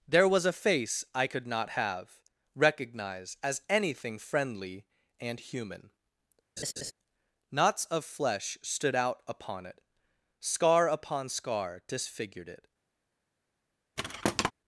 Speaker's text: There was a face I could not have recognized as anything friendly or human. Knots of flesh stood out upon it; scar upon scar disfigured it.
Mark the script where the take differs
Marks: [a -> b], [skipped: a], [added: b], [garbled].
There was a face I could not have [recognized -> recognize] as anything friendly [or -> and] human. Knots of flesh stood out upon it; scar upon scar disfigured it.